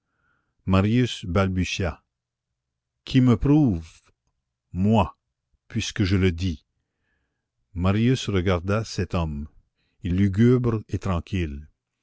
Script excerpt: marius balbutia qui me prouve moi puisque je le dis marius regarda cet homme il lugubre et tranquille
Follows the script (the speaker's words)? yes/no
yes